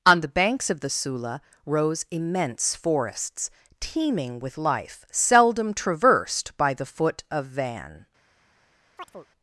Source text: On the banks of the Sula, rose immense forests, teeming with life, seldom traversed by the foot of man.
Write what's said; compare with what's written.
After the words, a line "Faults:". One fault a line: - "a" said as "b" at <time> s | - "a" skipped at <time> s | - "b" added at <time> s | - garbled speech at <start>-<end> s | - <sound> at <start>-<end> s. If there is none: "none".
On the banks of the Sula, rose immense forests, teeming with life, seldom traversed by the foot of van.
Faults:
- "man" said as "van" at 7.5 s
- chirp at 9.0-9.3 s